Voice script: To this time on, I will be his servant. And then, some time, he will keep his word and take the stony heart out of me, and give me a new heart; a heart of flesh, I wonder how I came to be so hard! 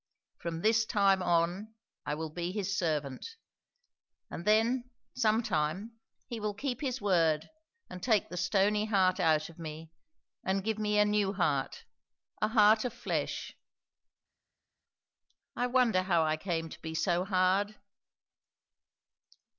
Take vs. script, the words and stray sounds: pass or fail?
fail